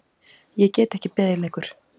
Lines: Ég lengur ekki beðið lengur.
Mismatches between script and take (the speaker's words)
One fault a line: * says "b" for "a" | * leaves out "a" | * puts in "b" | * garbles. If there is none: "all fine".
* says "get" for "lengur"